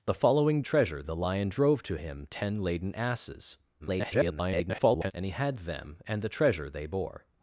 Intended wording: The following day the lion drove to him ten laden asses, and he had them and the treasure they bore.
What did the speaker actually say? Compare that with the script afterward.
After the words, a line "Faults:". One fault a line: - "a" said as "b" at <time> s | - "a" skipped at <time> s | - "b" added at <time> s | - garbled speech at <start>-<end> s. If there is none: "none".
The following treasure the lion drove to him ten laden asses, [garbled] and he had them and the treasure they bore.
Faults:
- "day" said as "treasure" at 0.6 s
- garbled speech at 3.8-5.1 s